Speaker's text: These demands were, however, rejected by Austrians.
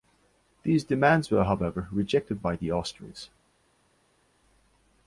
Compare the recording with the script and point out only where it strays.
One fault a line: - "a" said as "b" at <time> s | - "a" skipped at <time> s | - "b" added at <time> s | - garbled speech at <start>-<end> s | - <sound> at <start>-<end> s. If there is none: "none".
- "the" added at 2.5 s